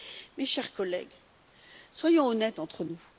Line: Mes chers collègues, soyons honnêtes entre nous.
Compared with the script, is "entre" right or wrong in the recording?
right